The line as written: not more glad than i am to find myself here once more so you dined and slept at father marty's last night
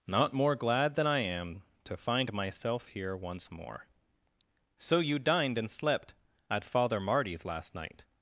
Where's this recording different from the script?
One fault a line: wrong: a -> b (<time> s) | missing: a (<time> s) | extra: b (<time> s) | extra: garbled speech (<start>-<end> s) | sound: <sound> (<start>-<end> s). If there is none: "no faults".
no faults